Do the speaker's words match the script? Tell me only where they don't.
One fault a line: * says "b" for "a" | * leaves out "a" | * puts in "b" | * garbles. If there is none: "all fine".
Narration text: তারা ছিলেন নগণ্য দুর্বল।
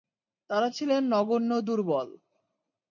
all fine